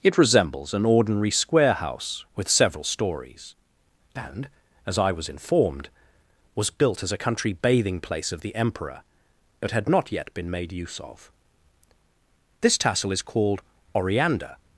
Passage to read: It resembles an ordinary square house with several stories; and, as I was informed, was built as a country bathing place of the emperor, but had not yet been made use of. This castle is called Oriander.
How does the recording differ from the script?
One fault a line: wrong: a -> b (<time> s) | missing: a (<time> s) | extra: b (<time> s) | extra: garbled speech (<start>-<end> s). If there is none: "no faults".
wrong: castle -> tassel (12.8 s)